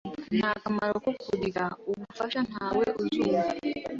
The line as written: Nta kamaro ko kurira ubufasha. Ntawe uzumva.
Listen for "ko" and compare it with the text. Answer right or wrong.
right